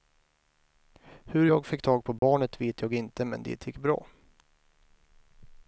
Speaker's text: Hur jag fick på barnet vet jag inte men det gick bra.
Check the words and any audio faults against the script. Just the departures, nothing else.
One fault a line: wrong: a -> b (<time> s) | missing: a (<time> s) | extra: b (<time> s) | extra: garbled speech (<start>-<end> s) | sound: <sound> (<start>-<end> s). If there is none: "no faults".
extra: tag (1.8 s)
sound: dropout (2.2-2.2 s)